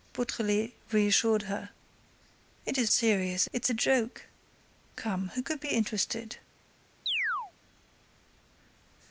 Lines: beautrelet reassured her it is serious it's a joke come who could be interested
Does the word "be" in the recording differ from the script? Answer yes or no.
no